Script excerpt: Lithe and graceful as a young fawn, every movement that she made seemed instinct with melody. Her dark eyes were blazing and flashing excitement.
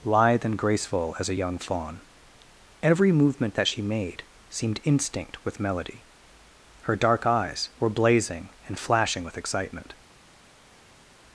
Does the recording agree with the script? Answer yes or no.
no